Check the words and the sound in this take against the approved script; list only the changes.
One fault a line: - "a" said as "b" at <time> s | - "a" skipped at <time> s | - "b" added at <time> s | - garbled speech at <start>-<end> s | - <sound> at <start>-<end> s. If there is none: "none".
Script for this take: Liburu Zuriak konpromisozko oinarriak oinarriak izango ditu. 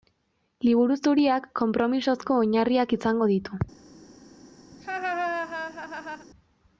- "oinarriak" skipped at 3.0 s
- laugh at 4.7-6.3 s